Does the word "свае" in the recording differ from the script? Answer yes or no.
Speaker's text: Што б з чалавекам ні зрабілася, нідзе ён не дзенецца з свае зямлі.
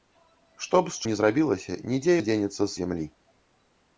yes